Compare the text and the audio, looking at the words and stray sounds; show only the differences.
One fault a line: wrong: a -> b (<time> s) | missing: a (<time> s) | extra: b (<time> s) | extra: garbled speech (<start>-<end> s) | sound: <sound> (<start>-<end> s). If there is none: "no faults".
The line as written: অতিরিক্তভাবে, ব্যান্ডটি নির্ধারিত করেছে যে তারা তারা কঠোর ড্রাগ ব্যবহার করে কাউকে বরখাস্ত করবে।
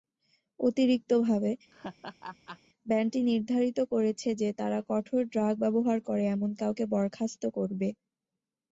sound: laugh (1.7-2.6 s)
missing: তারা (4.8 s)
extra: এমন (6.3 s)